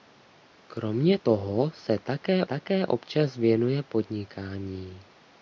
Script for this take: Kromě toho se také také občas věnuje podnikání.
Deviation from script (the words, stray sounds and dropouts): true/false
false